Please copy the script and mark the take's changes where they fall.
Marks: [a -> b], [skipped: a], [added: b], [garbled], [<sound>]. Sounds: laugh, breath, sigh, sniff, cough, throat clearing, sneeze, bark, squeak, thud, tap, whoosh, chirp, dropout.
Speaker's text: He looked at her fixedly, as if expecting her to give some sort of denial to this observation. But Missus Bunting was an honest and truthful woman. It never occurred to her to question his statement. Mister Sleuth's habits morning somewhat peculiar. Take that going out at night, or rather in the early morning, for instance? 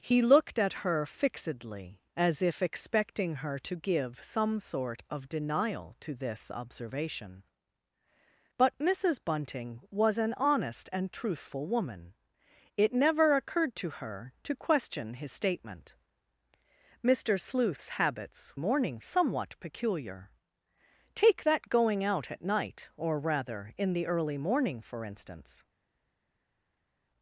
He looked at her fixedly, as if expecting her to give some sort of denial to this observation. But Missus Bunting was an honest and truthful woman. It never occurred to her to question his statement. Mister Sleuth's habits morning somewhat peculiar. Take that going out at night, or rather in the early morning, for instance?